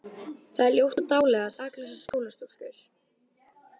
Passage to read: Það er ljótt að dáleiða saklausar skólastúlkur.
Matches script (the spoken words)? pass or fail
pass